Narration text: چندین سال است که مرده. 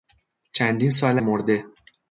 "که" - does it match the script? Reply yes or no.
no